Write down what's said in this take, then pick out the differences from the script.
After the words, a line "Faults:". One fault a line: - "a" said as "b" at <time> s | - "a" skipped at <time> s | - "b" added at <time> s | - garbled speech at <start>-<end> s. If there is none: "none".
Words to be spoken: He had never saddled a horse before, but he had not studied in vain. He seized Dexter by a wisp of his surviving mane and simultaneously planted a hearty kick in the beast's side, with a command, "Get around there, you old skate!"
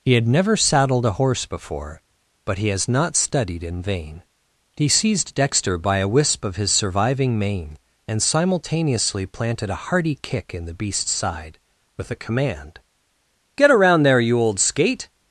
He had never saddled a horse before, but he has not studied in vain. He seized Dexter by a wisp of his surviving mane and simultaneously planted a hearty kick in the beast's side, with a command, "Get around there, you old skate!"
Faults:
- "had" said as "has" at 2.7 s